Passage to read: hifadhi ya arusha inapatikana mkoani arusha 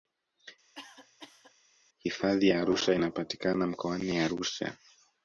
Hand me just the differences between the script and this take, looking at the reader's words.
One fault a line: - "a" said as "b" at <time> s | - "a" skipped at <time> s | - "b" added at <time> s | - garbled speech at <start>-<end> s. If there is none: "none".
none